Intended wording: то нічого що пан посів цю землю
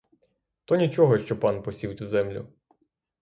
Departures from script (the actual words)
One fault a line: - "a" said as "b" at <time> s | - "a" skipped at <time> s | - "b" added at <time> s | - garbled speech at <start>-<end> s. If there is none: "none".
none